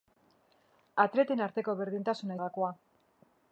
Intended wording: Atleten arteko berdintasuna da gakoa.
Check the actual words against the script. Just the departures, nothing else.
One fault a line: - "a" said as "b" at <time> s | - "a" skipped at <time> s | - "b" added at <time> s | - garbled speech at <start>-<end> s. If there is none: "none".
none